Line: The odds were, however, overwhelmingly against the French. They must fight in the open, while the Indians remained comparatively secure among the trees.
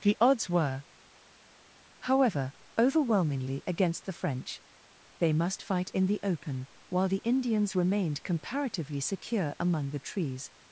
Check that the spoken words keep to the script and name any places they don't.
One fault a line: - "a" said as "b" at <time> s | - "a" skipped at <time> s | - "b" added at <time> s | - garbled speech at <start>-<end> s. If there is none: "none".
none